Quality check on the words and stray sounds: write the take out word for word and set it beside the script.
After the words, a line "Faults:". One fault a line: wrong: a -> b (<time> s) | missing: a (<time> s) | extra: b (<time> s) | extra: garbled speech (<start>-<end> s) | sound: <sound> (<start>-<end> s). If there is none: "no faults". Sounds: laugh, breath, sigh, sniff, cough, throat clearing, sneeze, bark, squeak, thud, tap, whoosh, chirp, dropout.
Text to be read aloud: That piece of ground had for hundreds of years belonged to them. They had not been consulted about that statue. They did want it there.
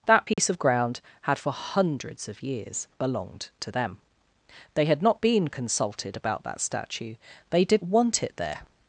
That piece of ground had for hundreds of years belonged to them. They had not been consulted about that statue. They did want it there.
Faults:
sound: dropout (0.3-0.4 s)